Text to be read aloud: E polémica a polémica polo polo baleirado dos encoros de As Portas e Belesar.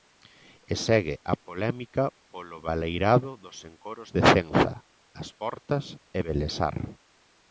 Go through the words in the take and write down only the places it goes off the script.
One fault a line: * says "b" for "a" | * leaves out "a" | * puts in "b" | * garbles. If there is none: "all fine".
* says "segue" for "polémica"
* leaves out "polo"
* puts in "Cenza"